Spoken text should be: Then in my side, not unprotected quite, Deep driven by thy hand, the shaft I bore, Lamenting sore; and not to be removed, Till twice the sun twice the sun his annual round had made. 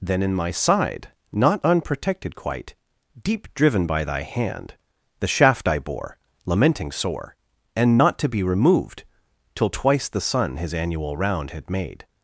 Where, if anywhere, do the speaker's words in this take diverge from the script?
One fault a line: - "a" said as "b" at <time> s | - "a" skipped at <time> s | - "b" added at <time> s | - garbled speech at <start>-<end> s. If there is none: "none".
- "twice the sun" skipped at 10.6 s